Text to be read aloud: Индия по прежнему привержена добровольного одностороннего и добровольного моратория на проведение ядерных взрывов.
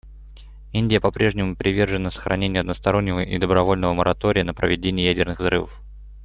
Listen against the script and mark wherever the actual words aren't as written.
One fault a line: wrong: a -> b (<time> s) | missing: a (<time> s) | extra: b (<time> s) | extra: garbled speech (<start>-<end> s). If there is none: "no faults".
wrong: добровольного -> сохранению (2.1 s)